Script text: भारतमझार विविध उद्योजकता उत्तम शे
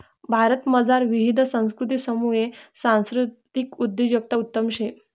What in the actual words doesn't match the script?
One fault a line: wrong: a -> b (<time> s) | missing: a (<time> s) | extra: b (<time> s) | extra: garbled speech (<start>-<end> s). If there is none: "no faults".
extra: संस्कृतीसमुये सांस्कृतिक (1.4 s)